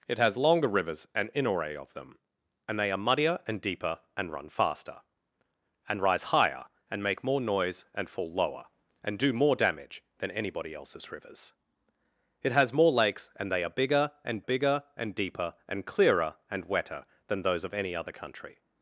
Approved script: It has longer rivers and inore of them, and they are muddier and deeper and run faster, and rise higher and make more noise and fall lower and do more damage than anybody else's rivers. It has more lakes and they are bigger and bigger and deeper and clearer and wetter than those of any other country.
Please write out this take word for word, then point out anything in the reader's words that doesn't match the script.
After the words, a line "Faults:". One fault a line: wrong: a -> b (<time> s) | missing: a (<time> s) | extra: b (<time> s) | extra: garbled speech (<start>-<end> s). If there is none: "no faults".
It has longer rivers and inore of them, and they are muddier and deeper and run faster, and rise higher and make more noise and fall lower and do more damage than anybody else's rivers. It has more lakes and they are bigger and bigger and deeper and clearer and wetter than those of any other country.
Faults:
no faults